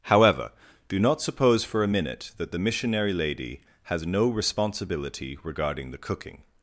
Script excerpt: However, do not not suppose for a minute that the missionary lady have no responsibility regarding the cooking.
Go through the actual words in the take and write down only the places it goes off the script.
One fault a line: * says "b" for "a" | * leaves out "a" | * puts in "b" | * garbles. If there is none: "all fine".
* leaves out "not"
* says "has" for "have"